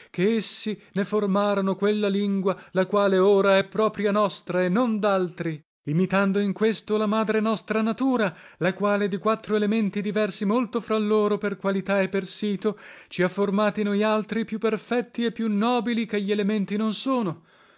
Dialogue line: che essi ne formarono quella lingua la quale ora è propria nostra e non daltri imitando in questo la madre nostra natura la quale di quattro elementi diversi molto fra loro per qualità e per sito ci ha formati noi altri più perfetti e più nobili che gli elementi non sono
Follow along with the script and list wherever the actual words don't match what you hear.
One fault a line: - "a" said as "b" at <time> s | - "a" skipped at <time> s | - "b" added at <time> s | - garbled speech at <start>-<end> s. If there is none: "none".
none